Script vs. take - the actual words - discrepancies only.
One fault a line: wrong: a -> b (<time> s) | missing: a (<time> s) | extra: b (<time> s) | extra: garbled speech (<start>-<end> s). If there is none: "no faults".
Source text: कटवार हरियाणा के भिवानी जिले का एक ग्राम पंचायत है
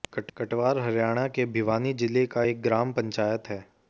no faults